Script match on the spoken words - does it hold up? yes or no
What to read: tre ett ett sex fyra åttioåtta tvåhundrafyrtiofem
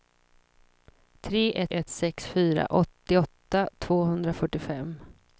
yes